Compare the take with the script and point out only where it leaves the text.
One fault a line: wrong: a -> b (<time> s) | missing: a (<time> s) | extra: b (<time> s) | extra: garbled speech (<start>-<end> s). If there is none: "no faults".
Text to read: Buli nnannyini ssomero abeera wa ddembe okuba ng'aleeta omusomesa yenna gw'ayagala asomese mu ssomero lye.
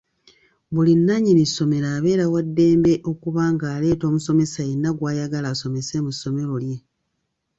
no faults